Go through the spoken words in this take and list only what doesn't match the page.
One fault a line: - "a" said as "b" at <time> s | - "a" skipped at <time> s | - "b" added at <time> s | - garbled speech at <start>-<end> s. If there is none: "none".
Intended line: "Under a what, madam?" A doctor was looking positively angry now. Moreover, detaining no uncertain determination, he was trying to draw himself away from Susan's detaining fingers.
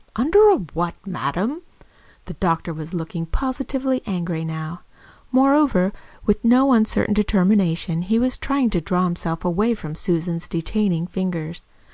- "A" said as "The" at 2.2 s
- "detaining" said as "with" at 6.2 s